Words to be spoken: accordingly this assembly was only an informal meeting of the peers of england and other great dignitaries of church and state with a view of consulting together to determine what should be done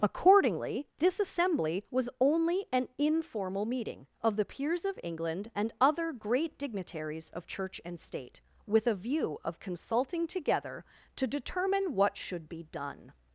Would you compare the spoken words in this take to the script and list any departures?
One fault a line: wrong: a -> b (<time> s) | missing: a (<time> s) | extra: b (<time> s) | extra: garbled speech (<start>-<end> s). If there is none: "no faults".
no faults